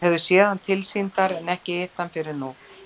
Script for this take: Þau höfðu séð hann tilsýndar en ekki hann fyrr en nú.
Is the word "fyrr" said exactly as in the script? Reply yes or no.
yes